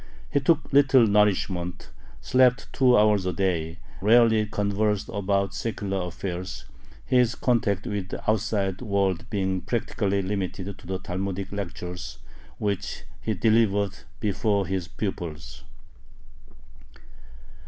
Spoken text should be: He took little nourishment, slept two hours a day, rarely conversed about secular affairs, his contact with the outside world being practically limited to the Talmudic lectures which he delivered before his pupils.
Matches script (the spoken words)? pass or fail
pass